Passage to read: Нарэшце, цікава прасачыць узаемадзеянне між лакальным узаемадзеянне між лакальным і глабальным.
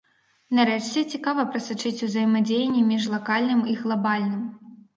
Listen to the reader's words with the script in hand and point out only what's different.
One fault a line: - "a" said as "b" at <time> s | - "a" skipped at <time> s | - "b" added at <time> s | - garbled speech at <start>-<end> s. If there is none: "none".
- "узаемадзеянне між лакальным" skipped at 3.6 s